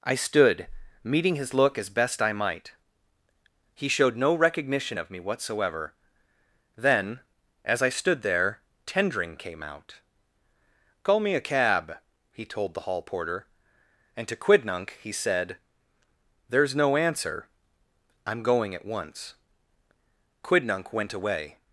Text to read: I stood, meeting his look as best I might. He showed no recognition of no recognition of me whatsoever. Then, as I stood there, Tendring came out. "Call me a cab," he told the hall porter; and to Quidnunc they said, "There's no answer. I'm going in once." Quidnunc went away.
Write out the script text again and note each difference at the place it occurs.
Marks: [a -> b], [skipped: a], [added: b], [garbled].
I stood, meeting his look as best I might. He showed no recognition of [skipped: no recognition of] me whatsoever. Then, as I stood there, Tendring came out. "Call me a cab," he told the hall porter; and to Quidnunc [they -> he] said, "There's no answer. I'm going [in -> at] once." Quidnunc went away.